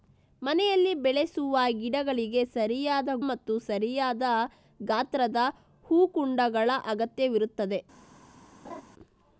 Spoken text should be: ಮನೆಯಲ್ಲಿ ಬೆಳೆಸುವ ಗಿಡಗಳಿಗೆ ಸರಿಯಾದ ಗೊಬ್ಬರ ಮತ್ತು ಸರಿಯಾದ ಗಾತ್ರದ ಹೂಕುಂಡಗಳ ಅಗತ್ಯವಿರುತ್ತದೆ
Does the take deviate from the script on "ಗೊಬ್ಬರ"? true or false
true